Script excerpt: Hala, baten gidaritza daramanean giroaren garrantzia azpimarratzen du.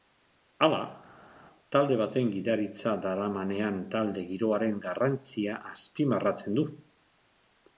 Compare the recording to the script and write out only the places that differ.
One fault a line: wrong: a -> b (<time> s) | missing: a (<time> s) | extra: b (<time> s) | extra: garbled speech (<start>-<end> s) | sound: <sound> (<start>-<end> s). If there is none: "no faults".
extra: talde (1.8 s)
extra: talde (4.0 s)